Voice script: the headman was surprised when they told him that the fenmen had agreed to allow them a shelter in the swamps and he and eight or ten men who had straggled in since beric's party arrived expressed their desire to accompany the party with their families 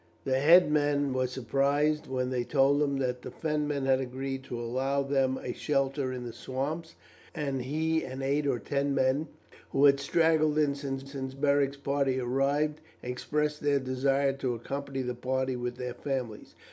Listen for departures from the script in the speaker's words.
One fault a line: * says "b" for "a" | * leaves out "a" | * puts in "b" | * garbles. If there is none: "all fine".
* puts in "since"